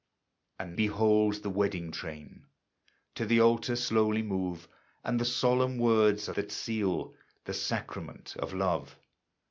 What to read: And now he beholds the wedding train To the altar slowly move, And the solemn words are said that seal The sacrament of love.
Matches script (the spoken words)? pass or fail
fail